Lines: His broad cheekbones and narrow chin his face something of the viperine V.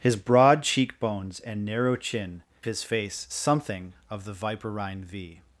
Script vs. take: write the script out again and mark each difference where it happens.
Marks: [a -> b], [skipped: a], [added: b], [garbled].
His broad cheekbones and narrow chin his face something of the viperine V.